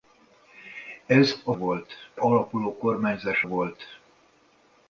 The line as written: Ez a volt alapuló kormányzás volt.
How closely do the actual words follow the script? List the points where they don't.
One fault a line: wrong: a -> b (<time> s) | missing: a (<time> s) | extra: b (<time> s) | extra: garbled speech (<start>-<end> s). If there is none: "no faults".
no faults